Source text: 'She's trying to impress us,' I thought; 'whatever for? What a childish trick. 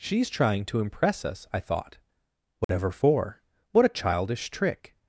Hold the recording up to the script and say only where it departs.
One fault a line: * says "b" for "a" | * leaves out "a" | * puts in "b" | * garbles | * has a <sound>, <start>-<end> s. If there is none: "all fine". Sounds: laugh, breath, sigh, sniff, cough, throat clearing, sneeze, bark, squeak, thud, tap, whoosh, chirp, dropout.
* has a dropout, 2.6-2.7 s